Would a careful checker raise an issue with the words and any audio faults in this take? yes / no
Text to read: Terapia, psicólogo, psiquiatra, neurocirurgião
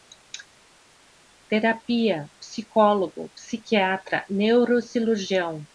no